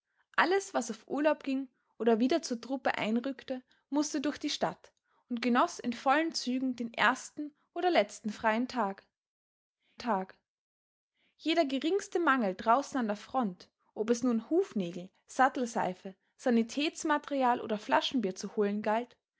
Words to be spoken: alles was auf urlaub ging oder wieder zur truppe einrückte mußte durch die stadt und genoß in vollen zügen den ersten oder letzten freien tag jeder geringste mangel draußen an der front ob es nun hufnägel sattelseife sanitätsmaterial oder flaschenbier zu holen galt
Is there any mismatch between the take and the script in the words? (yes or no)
yes